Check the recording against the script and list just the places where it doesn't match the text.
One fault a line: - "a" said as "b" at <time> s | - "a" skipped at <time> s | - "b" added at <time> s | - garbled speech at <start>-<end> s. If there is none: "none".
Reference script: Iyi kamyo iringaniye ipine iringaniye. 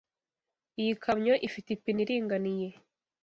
- "iringaniye" said as "ifite" at 1.5 s